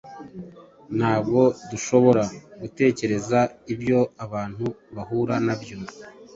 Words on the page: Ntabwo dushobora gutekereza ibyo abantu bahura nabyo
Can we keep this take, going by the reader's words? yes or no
yes